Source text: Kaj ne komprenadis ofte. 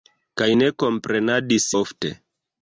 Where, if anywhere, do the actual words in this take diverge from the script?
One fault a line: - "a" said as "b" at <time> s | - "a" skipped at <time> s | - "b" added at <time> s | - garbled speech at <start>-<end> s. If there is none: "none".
none